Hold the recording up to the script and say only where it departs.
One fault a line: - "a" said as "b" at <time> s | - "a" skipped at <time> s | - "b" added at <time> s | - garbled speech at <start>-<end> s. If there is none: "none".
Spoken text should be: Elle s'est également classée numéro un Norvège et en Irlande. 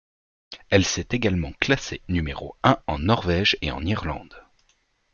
- "en" added at 2.9 s